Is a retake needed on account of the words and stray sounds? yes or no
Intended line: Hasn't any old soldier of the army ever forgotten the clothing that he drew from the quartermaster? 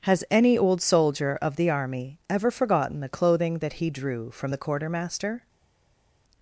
yes